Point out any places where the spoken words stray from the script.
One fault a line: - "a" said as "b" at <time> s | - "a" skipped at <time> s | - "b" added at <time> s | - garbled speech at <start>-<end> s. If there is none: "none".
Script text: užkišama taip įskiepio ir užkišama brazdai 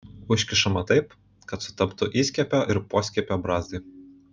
- "kad sutaptų" added at 1.5 s
- "užkišama" said as "poskiepio" at 3.0 s